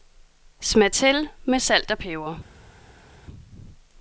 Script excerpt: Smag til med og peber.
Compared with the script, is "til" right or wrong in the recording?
right